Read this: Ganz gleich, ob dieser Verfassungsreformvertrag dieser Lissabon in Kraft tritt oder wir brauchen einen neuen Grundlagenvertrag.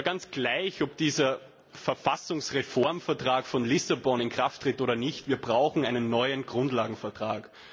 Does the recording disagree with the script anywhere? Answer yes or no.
yes